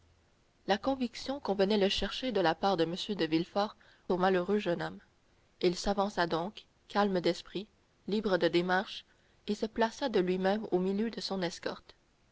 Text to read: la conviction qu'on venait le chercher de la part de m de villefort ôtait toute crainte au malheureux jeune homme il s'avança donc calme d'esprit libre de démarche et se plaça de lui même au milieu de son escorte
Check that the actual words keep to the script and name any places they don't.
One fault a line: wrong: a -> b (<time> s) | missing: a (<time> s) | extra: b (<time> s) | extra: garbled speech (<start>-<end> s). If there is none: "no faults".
missing: ôtait toute crainte (3.8 s)